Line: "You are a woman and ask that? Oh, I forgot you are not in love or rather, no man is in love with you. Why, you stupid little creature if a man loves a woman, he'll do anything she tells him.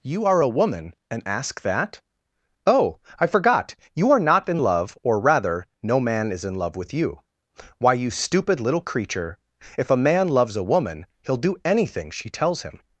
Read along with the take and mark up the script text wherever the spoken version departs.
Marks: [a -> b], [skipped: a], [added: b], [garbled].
"You are a woman and ask that? Oh, I forgot you are not in love or rather, no man is in love with you. Why, you stupid little creature if a man loves a woman, he'll do anything she tells him.